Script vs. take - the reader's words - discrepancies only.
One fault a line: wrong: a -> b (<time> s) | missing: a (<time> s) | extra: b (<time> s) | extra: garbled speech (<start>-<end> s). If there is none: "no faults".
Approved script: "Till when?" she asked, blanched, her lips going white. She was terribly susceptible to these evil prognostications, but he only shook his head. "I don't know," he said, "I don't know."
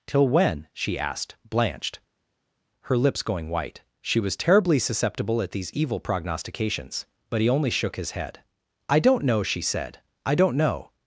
wrong: to -> at (5.4 s)
wrong: he -> she (9.4 s)